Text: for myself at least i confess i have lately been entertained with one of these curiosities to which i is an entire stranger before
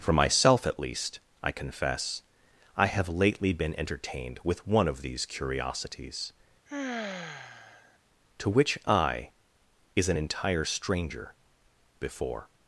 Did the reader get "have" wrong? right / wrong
right